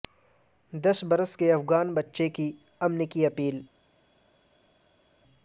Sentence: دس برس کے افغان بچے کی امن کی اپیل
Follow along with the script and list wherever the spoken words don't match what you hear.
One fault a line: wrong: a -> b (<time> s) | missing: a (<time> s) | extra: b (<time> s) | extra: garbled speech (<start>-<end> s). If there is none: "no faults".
no faults